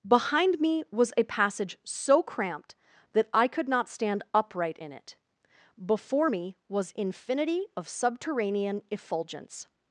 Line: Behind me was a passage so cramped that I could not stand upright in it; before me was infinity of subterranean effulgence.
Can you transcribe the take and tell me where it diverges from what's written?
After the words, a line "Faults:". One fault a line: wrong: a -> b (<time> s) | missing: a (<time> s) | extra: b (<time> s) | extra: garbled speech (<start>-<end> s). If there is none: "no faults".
Behind me was a passage so cramped that I could not stand upright in it; before me was infinity of subterranean effulgence.
Faults:
no faults